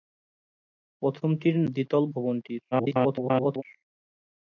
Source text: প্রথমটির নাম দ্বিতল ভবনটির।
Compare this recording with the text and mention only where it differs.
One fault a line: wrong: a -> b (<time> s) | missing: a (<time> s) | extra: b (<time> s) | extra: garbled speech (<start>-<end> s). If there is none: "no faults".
missing: নাম (1.6 s)
extra: garbled speech (2.7-3.6 s)